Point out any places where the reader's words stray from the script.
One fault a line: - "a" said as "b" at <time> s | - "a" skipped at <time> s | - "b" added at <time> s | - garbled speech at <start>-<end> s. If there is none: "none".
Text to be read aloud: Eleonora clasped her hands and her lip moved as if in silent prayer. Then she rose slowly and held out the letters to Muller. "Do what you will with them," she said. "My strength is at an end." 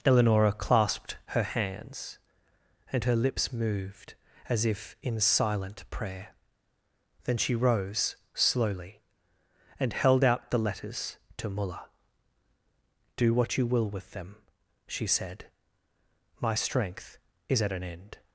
- "lip" said as "lips" at 3.1 s